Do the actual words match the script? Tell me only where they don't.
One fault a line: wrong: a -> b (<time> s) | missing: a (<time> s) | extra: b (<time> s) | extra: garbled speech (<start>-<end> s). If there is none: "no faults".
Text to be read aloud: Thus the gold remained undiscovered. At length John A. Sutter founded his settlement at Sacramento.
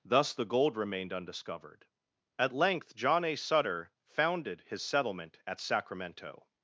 no faults